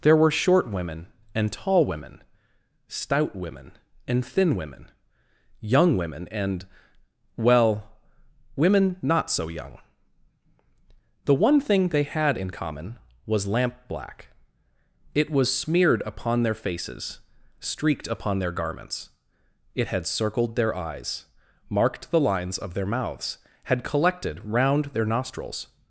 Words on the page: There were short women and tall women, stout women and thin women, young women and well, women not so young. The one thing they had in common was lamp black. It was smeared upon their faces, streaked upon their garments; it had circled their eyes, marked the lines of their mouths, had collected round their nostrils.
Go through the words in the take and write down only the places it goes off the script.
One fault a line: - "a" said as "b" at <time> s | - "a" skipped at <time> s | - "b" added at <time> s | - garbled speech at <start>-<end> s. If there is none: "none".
none